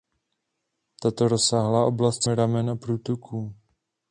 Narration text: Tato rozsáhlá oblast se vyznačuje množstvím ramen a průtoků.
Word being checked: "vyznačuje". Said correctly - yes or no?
no